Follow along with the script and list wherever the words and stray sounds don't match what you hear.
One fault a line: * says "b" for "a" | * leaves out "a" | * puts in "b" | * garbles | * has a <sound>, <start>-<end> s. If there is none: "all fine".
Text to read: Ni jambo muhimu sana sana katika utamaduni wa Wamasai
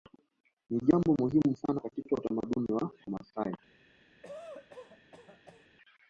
* leaves out "sana"
* has a cough, 4.2-5.7 s